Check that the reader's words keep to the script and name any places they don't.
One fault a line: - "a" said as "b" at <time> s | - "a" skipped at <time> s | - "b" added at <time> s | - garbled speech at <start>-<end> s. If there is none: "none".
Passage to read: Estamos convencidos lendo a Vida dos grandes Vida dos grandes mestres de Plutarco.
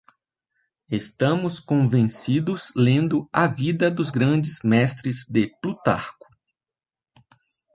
- "Vida dos grandes" skipped at 4.6 s